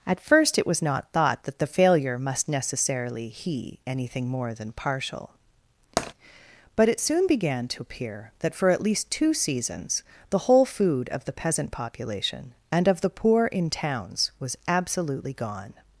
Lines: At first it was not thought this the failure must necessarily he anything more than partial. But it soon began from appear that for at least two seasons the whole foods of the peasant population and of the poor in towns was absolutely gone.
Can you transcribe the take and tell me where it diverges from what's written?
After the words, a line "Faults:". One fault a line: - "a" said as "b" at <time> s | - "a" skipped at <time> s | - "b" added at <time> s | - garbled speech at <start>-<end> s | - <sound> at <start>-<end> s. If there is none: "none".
At first it was not thought that the failure must necessarily he anything more than partial. But it soon began to appear that for at least two seasons the whole food of the peasant population and of the poor in towns was absolutely gone.
Faults:
- "this" said as "that" at 1.4 s
- tap at 6.0-6.1 s
- "from" said as "to" at 7.7 s
- "foods" said as "food" at 10.7 s